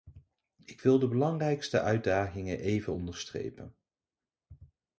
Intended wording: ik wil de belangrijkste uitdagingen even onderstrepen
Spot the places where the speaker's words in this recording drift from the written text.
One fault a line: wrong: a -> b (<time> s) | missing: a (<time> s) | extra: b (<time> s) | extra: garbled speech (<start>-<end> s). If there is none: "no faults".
no faults